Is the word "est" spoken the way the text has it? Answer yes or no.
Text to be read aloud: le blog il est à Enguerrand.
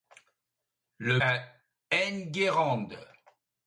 no